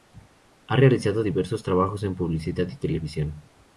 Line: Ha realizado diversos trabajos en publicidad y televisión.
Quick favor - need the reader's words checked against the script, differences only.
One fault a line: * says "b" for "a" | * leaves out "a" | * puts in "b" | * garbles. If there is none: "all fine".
all fine